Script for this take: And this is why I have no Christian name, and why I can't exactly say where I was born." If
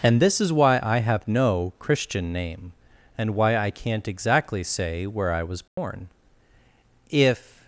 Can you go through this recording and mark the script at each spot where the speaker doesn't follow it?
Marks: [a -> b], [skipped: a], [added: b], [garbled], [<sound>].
And this is why I have no Christian name, and why I can't exactly say where I was born." [dropout] If